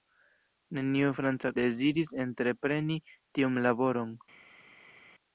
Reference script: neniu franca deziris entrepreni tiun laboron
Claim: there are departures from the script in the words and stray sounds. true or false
false